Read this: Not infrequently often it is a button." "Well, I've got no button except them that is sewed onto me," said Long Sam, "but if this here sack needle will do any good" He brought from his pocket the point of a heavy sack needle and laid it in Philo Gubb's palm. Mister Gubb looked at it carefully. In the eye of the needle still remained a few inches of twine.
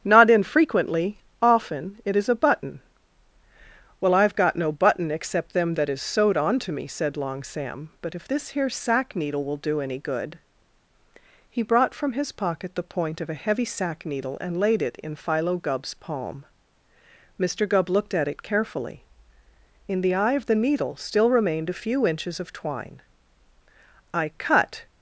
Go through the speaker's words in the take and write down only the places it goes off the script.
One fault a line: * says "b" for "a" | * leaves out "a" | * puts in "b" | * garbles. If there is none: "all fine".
* puts in "I cut"